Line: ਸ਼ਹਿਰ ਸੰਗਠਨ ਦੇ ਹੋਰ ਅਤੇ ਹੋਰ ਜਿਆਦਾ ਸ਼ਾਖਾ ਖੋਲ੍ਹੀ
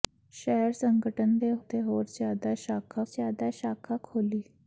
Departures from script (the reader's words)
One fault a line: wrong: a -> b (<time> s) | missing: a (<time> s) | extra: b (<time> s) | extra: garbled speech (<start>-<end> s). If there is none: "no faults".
extra: ਅਤੇ (1.6 s)
wrong: ਅਤੇ ਹੋਰ -> ਜਿਆਦਾ ਸ਼ਾਖਾ (2.1 s)